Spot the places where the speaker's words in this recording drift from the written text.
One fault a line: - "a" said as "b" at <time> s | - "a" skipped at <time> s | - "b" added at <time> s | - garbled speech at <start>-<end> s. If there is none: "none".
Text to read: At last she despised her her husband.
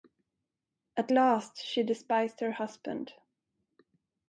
- "her" skipped at 2.5 s